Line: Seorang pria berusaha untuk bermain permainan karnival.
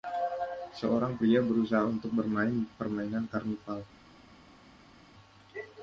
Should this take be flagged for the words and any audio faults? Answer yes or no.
no